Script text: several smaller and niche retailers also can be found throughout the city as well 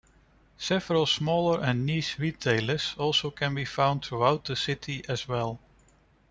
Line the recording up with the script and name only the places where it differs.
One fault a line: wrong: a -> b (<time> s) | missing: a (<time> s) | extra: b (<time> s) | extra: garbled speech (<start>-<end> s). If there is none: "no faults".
no faults